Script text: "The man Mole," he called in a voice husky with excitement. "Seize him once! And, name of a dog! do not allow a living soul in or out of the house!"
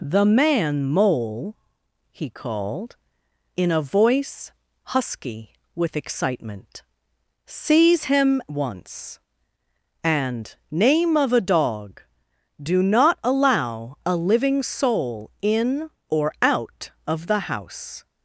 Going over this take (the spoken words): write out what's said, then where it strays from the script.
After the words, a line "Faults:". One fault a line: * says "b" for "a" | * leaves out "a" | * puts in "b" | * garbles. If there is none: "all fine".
"The man Mole," he called in a voice husky with excitement. "Seize him once! And, name of a dog! do not allow a living soul in or out of the house!"
Faults:
all fine